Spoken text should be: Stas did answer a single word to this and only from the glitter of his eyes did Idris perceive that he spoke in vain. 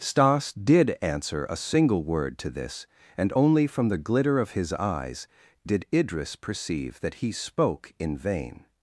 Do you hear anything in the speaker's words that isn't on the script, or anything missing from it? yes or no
no